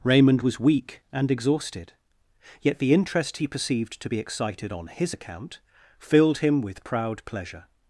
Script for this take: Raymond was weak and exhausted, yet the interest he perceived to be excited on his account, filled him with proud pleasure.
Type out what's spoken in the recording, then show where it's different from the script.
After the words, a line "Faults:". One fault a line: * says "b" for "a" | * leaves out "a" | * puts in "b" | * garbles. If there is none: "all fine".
Raymond was weak and exhausted, yet the interest he perceived to be excited on his account, filled him with proud pleasure.
Faults:
all fine